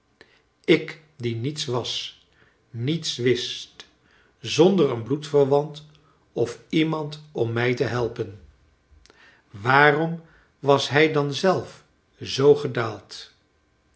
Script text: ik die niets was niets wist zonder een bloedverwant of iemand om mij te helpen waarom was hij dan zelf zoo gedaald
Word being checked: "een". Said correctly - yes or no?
yes